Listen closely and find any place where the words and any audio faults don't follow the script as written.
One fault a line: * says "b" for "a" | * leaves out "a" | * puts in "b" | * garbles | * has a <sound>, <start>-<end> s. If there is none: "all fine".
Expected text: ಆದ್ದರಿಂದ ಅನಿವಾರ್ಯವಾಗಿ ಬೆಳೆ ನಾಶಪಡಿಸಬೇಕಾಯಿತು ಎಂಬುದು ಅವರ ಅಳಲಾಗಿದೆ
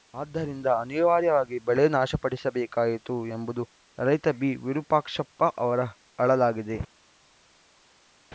* puts in "ರೈತ ಬಿವಿರೂಪಾಕ್ಷಪ್ಪ"